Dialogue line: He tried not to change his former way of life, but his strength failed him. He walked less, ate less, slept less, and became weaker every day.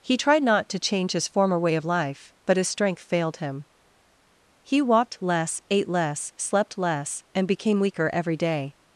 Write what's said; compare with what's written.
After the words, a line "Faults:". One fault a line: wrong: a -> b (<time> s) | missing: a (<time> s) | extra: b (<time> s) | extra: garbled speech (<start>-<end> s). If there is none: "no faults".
He tried not to change his former way of life, but his strength failed him. He walked less, ate less, slept less, and became weaker every day.
Faults:
no faults